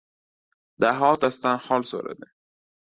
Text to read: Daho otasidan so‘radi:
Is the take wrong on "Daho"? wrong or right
right